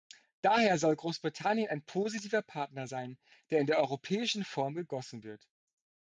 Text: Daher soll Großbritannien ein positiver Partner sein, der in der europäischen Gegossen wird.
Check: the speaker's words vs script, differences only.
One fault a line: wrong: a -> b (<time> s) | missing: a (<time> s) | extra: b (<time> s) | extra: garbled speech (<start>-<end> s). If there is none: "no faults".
extra: Form (4.4 s)